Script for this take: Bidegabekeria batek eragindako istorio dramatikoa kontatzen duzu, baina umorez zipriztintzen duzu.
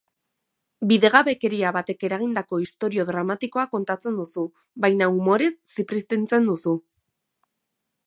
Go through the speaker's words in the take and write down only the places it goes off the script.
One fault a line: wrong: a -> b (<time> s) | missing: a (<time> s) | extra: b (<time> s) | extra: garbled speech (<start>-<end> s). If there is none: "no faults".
no faults